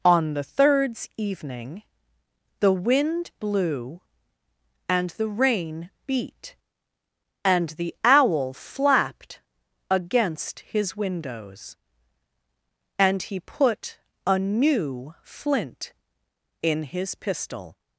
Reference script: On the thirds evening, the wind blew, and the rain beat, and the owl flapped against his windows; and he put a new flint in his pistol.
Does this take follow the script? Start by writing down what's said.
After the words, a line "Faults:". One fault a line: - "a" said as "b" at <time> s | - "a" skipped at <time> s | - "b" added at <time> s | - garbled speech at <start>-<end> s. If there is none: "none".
On the thirds evening, the wind blew, and the rain beat, and the owl flapped against his windows; and he put a new flint in his pistol.
Faults:
none